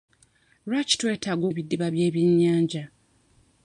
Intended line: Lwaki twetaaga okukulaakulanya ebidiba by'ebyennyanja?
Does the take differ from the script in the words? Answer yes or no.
yes